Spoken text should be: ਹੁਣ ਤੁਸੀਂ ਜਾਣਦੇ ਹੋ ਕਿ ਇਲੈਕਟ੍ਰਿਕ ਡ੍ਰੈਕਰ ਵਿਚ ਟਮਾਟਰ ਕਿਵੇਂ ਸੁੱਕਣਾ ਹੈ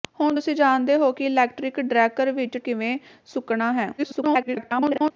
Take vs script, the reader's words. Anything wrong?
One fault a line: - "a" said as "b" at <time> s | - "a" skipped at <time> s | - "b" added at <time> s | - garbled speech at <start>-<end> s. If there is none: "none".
- "ਟਮਾਟਰ" skipped at 2.6 s
- garbled speech at 4.0-5.1 s